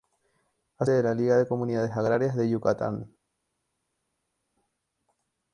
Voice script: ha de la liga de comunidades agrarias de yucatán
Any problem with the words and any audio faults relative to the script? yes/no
no